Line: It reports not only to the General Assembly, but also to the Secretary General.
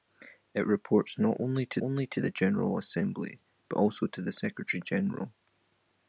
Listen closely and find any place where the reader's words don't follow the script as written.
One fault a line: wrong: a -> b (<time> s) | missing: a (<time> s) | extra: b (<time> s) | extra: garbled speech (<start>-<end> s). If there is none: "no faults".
extra: only to (1.8 s)